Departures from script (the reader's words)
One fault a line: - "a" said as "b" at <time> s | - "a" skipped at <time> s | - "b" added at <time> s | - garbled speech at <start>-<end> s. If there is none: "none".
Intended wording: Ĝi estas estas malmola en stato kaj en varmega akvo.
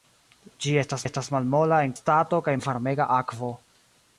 none